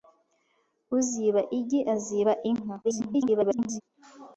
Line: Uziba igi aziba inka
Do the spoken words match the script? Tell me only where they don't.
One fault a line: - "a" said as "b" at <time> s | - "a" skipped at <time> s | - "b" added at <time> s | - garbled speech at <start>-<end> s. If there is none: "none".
- garbled speech at 2.8-3.8 s